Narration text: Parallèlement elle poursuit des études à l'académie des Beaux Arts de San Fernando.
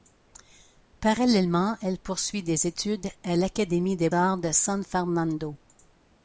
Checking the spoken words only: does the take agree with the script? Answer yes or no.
no